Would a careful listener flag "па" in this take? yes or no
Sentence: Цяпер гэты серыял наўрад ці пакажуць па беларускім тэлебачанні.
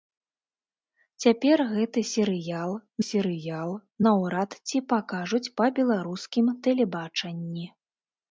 no